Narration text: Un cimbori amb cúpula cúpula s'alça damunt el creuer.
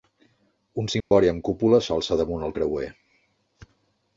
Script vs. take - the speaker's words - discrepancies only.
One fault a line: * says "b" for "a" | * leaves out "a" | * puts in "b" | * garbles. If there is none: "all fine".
* leaves out "cúpula"